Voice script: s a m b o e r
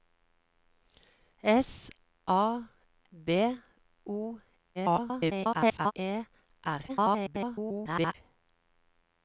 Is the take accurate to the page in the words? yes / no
no